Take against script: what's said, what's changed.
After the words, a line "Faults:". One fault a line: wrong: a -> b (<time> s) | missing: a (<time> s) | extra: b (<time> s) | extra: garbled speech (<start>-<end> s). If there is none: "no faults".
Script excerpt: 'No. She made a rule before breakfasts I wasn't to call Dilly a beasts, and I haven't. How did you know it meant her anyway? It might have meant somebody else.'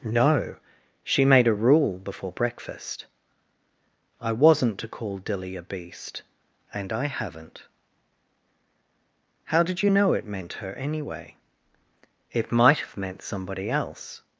'No. She made a rule before breakfast I wasn't to call Dilly a beast, and I haven't. How did you know it meant her anyway? It might have meant somebody else.'
Faults:
wrong: breakfasts -> breakfast (2.3 s)
wrong: beasts -> beast (5.6 s)